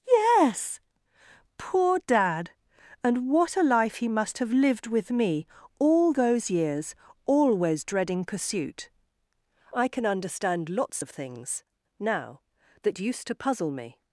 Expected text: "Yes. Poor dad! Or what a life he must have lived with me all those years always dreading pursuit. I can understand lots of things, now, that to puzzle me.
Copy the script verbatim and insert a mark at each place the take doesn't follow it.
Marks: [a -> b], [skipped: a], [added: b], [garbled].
"Yes. Poor dad! [Or -> And] what a life he must have lived with me all those years always dreading pursuit. I can understand lots of things, now, that [added: used] to puzzle me.